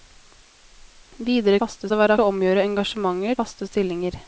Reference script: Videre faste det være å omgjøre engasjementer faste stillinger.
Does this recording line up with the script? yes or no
yes